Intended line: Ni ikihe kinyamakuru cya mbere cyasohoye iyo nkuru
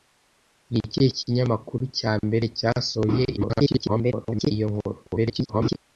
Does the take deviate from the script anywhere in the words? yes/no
yes